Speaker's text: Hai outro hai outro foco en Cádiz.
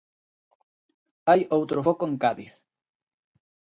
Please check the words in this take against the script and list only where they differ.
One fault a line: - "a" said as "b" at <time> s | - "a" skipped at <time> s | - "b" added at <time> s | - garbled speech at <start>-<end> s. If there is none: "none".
- "hai outro" skipped at 1.8 s